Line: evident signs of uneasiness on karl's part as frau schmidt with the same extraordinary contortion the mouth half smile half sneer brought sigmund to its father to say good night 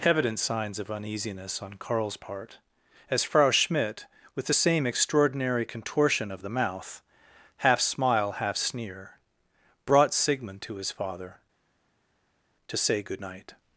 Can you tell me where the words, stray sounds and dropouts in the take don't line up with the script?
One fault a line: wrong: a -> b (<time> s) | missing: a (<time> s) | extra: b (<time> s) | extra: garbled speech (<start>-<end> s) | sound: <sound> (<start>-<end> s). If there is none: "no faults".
extra: of (6.3 s)
wrong: its -> his (10.7 s)